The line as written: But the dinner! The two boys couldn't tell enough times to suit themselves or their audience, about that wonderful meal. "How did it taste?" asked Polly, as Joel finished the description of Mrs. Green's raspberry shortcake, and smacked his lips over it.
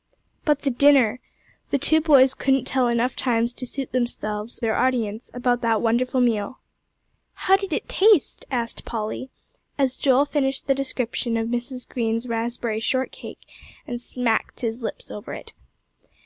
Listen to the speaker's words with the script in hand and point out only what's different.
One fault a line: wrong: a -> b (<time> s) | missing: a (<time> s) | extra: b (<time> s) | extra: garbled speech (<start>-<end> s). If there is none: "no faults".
missing: or (4.6 s)